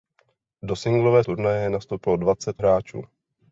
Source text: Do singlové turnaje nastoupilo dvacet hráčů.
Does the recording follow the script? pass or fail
pass